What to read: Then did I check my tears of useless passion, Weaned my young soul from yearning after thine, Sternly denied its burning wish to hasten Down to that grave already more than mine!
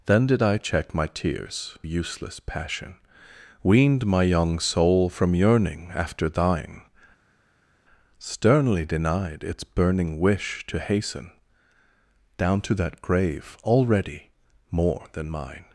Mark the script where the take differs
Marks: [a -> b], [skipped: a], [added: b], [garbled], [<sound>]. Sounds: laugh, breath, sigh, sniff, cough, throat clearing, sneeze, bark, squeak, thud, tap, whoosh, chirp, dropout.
Then did I check my tears [skipped: of] useless passion, Weaned my young soul from yearning after thine, Sternly denied its burning wish to hasten Down to that grave already more than mine!